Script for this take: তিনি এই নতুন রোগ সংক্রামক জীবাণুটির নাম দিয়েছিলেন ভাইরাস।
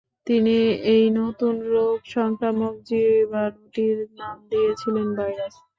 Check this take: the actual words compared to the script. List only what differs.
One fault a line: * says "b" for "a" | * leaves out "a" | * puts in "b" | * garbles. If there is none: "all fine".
all fine